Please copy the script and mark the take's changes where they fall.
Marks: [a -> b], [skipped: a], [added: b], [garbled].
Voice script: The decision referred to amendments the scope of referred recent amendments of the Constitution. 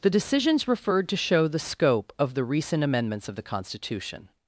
The [decision -> decisions] referred to [amendments -> show] the scope of [referred -> the] recent amendments of the Constitution.